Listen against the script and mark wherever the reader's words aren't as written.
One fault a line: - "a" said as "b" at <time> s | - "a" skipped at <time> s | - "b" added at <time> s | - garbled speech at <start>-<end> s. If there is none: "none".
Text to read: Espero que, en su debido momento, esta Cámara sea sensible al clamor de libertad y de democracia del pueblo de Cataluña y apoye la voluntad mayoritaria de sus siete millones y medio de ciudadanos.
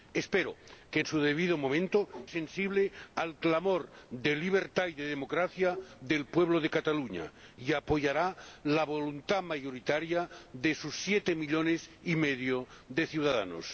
- "esta Cámara sea" skipped at 2.1 s